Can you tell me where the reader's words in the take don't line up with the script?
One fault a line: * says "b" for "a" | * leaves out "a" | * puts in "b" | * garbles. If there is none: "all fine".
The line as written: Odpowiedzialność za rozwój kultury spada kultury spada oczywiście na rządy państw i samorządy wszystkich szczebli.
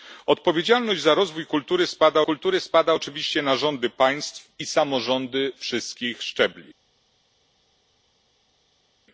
all fine